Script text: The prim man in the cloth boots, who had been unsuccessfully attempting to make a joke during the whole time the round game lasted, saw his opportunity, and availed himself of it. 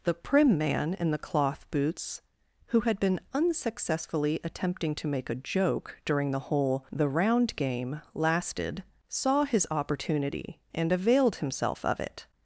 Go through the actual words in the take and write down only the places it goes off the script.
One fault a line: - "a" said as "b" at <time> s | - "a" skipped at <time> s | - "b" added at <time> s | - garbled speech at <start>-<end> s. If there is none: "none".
- "time" skipped at 6.9 s